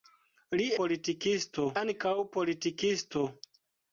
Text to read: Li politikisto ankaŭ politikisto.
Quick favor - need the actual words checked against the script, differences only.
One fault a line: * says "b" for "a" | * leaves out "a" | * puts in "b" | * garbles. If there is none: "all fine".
all fine